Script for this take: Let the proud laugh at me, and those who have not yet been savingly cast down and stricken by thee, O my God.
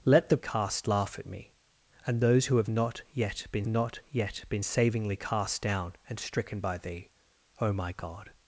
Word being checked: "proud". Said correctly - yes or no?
no